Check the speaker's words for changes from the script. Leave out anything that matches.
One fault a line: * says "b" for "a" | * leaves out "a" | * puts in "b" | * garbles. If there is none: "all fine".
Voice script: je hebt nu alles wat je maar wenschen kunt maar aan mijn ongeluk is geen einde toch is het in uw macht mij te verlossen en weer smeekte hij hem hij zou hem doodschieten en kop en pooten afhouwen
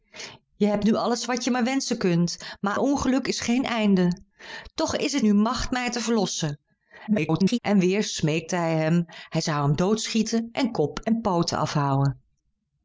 * leaves out "aan mijn"
* leaves out "in"
* garbles